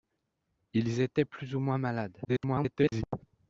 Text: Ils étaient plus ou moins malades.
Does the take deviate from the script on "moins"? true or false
false